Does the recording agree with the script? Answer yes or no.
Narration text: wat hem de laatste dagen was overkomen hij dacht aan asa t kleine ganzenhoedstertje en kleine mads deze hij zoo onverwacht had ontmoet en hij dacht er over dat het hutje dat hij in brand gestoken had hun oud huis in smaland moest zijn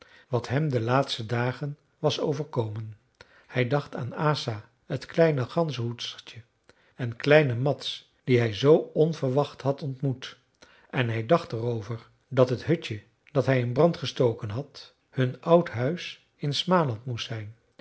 no